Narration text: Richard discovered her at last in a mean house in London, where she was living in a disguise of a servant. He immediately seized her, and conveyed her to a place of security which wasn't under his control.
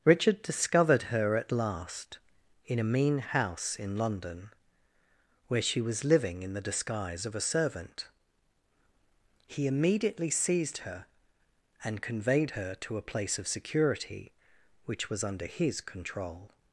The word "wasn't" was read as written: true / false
false